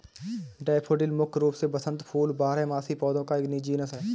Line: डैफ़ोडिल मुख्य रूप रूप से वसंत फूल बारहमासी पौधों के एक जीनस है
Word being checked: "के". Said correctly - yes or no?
no